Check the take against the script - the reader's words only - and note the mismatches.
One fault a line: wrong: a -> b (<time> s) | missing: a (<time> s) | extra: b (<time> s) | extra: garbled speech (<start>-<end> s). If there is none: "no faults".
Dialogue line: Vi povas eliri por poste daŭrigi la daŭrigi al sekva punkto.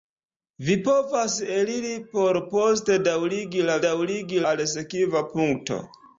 no faults